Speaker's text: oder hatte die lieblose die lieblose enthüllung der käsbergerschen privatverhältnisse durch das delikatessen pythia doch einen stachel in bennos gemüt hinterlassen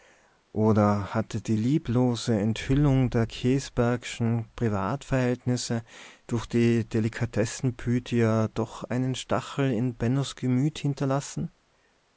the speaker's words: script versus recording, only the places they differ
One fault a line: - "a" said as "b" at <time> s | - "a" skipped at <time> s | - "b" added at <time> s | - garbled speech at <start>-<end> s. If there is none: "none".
- "die lieblose" skipped at 2.4 s
- "das" said as "die" at 6.5 s